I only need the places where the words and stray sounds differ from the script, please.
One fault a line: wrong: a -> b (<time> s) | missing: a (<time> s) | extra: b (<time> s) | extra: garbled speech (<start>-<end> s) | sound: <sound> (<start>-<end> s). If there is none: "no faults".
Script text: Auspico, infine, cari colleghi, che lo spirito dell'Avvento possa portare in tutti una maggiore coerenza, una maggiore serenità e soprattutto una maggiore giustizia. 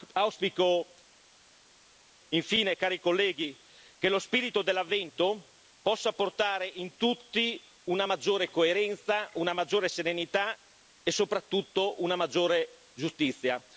no faults